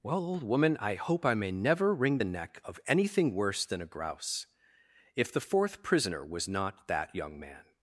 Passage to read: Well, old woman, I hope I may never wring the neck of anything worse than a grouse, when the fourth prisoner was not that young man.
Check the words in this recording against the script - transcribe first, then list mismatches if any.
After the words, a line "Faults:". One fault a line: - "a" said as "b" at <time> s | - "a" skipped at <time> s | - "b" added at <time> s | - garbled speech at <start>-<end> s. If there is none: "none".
Well, old woman, I hope I may never wring the neck of anything worse than a grouse, if the fourth prisoner was not that young man.
Faults:
- "when" said as "if" at 5.2 s